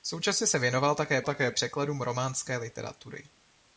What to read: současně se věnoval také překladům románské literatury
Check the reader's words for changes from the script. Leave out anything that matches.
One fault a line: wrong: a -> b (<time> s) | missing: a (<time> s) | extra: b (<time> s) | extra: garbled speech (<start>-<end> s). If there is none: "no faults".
extra: také (1.2 s)